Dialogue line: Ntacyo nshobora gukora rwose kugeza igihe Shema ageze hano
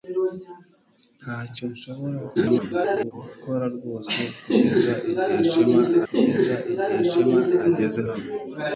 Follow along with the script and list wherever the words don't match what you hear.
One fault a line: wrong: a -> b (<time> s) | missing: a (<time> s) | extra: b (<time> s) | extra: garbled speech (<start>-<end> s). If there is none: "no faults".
extra: garbled speech (2.4-3.1 s)
extra: kugeza igihe Shema (6.1 s)